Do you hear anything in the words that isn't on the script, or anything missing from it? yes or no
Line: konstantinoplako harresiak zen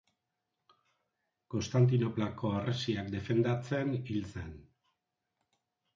yes